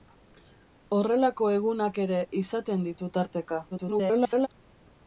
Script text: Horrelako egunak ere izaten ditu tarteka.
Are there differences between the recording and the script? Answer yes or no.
yes